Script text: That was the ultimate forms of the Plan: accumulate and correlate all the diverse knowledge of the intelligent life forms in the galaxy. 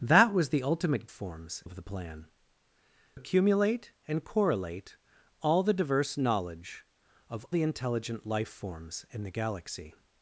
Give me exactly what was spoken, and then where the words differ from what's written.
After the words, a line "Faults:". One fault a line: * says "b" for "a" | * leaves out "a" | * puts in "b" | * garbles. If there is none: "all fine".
That was the ultimate forms of the Plan: accumulate and correlate all the diverse knowledge of the intelligent life forms in the galaxy.
Faults:
all fine